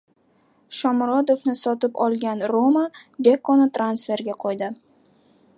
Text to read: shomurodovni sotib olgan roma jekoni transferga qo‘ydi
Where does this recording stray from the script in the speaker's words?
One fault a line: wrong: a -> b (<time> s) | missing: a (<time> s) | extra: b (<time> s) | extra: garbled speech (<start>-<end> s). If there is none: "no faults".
no faults